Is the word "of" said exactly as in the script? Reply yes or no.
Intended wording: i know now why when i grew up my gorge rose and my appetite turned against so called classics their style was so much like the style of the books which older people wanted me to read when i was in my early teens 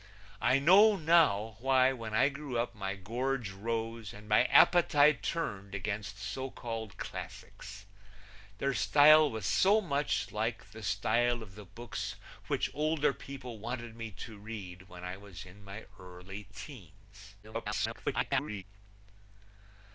yes